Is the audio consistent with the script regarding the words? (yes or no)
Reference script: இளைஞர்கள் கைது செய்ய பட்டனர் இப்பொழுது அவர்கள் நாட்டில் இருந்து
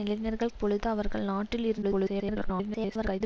no